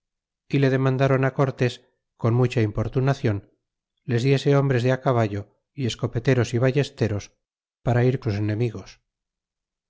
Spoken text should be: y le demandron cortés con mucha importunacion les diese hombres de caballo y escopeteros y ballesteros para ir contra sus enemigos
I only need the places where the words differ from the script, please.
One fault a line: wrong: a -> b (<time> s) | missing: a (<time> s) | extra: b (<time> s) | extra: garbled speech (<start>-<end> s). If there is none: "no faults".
missing: contra (8.2 s)